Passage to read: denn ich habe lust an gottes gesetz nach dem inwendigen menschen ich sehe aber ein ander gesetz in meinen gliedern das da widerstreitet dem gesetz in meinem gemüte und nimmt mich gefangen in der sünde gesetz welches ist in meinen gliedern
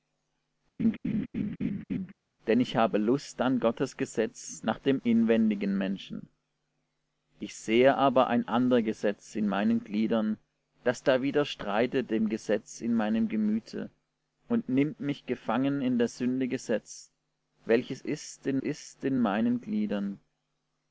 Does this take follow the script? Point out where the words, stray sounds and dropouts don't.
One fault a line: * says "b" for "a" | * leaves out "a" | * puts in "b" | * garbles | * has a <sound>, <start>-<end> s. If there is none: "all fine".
* has a laugh, 0.8-2.1 s
* puts in "ist in"